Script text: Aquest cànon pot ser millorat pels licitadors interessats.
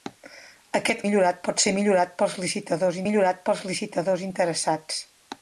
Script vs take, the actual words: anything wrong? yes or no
yes